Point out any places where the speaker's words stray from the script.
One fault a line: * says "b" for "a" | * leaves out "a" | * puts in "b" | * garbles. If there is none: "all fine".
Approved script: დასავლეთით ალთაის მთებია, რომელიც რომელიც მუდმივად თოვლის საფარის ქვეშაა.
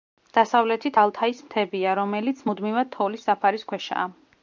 * leaves out "რომელიც"